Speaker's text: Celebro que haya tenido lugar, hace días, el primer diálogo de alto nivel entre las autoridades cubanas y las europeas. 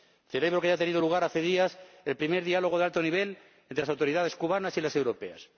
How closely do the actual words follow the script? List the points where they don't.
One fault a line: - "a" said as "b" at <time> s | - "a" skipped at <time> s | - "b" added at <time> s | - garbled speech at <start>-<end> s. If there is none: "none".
none